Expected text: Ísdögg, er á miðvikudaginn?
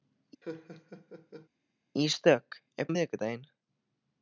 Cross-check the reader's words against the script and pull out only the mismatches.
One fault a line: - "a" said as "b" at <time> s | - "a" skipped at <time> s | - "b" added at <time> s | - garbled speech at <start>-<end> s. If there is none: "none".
none